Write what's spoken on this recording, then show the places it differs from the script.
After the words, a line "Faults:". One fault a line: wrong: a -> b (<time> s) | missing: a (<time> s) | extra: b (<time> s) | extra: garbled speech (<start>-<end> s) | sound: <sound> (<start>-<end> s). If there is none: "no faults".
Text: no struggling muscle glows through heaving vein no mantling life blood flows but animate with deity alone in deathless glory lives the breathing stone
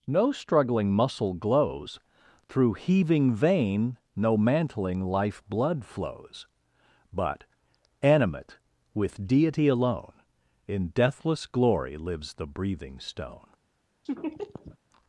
no struggling muscle glows through heaving vein no mantling life blood flows but animate with deity alone in deathless glory lives the breathing stone
Faults:
sound: laugh (14.0-14.8 s)